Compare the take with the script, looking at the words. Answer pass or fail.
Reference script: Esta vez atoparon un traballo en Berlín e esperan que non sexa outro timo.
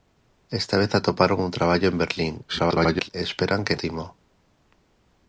fail